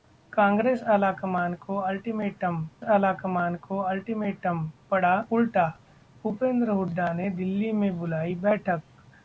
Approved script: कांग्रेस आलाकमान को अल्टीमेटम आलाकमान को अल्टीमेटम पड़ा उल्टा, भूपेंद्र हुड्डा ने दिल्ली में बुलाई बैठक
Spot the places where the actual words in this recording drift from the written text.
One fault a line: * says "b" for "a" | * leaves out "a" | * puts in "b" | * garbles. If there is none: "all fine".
all fine